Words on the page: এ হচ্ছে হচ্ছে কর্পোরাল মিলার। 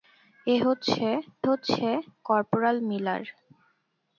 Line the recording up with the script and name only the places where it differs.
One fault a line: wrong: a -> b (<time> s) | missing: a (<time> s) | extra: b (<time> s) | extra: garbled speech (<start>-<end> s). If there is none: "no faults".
no faults